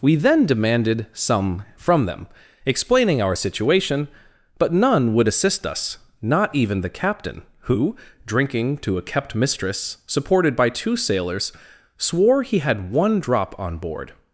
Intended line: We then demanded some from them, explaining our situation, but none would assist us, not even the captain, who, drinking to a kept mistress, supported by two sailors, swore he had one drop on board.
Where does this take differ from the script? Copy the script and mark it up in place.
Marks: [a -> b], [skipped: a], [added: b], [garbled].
We then demanded some from them, explaining our situation, but none would assist us, not even the captain, who, drinking to a kept mistress, supported by two sailors, swore he had one drop on board.